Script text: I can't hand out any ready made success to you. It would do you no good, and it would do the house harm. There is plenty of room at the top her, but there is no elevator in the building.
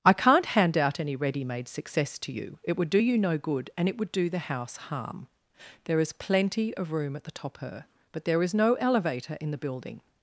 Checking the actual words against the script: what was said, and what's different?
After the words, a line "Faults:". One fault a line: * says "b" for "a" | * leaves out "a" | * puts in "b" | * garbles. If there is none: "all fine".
I can't hand out any ready made success to you. It would do you no good, and it would do the house harm. There is plenty of room at the top her, but there is no elevator in the building.
Faults:
all fine